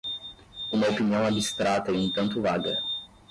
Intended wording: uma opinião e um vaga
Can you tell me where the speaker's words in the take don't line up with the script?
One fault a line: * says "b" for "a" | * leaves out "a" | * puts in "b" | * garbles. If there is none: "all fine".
* puts in "abstrata"
* puts in "tanto"